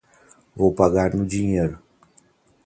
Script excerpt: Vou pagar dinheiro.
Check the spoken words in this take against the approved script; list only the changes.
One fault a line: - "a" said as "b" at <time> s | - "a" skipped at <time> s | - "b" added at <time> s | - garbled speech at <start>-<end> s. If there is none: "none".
- "no" added at 1.1 s